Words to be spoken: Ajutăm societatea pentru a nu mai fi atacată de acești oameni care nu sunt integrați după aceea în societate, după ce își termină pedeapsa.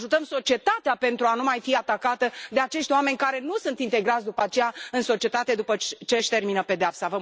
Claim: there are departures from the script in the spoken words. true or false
false